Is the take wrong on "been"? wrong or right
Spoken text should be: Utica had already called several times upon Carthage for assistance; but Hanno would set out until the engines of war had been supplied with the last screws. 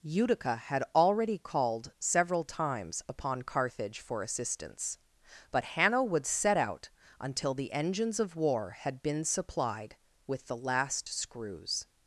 right